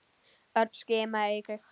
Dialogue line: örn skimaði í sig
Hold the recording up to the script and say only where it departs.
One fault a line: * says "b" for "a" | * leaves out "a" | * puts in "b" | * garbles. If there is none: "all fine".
all fine